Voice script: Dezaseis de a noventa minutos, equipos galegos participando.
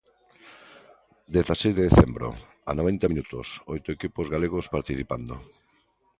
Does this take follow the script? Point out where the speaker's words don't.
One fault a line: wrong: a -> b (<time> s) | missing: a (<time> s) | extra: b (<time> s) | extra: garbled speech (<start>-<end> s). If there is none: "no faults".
extra: decembro (1.9 s)
extra: oito (3.7 s)